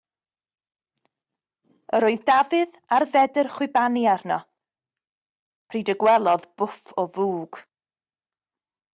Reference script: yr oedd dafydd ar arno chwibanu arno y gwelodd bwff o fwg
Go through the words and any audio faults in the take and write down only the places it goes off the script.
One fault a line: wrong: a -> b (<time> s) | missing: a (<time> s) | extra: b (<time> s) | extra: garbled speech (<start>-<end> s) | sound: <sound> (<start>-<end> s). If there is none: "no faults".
wrong: arno -> fedr (3.1 s)
extra: pryd (5.7 s)